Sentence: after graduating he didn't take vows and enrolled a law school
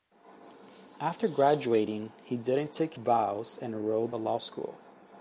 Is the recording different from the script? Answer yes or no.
no